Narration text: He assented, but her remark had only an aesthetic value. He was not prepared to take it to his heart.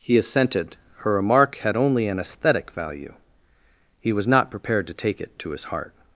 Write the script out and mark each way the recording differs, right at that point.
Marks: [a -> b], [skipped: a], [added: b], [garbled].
He assented, [skipped: but] her remark had only an aesthetic value. He was not prepared to take it to his heart.